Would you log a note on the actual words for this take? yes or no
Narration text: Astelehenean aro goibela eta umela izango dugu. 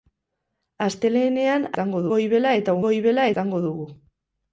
yes